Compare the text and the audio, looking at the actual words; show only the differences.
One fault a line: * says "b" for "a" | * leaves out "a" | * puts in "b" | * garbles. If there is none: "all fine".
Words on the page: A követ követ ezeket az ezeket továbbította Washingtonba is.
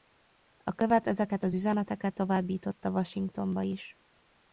* leaves out "követ"
* says "üzeneteket" for "ezeket"